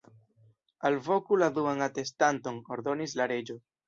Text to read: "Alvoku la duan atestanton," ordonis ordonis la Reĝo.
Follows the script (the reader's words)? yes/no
no